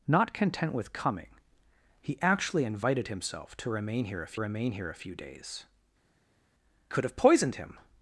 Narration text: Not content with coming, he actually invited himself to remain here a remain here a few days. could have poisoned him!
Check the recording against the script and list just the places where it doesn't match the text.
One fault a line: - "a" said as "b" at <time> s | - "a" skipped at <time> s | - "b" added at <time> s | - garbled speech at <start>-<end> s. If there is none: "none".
none